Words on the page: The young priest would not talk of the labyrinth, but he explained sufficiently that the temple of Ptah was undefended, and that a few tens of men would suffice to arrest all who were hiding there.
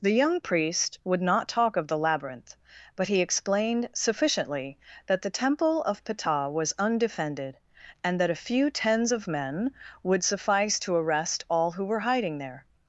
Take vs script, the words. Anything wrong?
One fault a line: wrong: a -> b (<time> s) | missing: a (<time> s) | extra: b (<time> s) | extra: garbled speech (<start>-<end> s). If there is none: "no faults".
no faults